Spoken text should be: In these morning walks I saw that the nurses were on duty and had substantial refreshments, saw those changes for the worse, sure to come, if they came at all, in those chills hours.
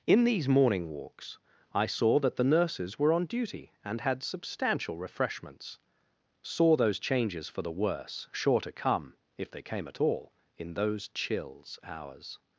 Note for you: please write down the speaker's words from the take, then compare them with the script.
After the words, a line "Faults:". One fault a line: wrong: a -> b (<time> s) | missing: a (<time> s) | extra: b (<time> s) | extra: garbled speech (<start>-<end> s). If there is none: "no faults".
In these morning walks I saw that the nurses were on duty and had substantial refreshments, saw those changes for the worse, sure to come, if they came at all, in those chills hours.
Faults:
no faults